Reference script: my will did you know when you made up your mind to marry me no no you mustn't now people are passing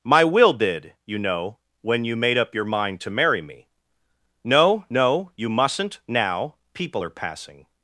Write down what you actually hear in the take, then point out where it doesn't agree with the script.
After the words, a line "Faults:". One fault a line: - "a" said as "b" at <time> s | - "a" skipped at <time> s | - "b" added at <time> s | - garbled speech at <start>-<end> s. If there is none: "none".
my will did you know when you made up your mind to marry me no no you mustn't now people are passing
Faults:
none